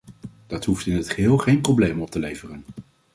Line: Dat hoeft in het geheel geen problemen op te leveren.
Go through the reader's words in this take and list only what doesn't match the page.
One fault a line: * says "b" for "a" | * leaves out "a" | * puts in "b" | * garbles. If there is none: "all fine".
all fine